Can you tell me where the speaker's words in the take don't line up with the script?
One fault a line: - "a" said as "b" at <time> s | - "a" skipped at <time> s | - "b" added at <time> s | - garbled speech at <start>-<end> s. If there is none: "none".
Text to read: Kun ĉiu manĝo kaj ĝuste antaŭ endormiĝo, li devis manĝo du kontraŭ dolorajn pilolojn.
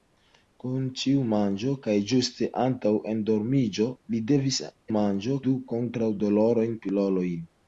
none